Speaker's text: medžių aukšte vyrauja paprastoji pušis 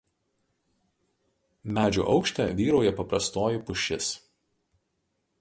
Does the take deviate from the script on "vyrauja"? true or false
false